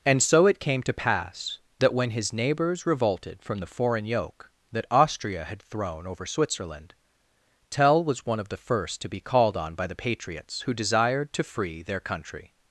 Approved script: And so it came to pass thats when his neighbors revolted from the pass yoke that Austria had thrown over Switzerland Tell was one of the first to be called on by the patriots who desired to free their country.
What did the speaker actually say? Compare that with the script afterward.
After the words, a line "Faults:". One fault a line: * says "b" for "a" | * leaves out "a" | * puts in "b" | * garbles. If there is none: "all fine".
And so it came to pass that when his neighbors revolted from the foreign yoke that Austria had thrown over Switzerland Tell was one of the first to be called on by the patriots who desired to free their country.
Faults:
* says "that" for "thats"
* says "foreign" for "pass"